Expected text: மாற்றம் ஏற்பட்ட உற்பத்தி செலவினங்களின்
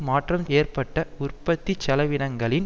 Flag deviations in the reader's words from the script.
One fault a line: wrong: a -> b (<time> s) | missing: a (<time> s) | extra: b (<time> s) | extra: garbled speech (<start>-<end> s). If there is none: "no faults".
no faults